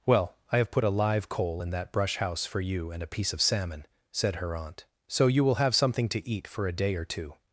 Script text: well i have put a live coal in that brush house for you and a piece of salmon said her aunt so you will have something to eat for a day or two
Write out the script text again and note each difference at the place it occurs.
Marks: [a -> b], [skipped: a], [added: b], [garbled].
well i have put a live coal in that brush house for you and a piece of salmon said her aunt so you will have something to eat for a day or two